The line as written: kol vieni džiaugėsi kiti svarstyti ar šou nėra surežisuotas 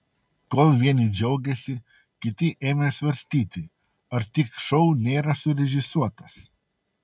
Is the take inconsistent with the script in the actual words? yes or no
yes